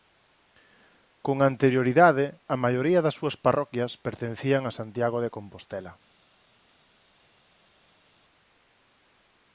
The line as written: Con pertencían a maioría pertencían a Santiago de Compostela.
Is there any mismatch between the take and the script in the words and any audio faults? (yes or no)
yes